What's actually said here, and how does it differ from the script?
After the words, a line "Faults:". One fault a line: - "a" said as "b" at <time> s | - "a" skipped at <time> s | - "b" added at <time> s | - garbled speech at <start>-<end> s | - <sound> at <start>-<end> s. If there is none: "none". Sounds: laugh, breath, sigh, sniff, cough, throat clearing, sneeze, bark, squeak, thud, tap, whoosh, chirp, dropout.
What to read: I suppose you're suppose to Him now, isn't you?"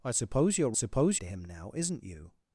I suppose you're suppose to Him now, isn't you?"
Faults:
none